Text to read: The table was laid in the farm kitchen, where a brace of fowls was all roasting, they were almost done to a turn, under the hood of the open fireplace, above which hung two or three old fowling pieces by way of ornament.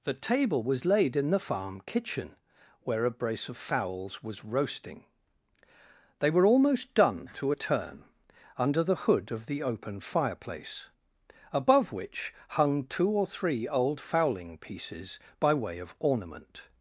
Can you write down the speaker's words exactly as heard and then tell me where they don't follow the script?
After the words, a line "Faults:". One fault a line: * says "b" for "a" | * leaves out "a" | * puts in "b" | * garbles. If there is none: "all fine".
The table was laid in the farm kitchen, where a brace of fowls was roasting, they were almost done to a turn, under the hood of the open fireplace, above which hung two or three old fowling pieces by way of ornament.
Faults:
* leaves out "all"